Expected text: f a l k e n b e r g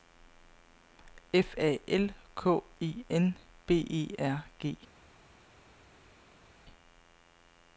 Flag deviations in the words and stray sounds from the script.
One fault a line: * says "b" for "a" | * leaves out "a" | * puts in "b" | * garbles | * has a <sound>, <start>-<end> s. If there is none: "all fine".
all fine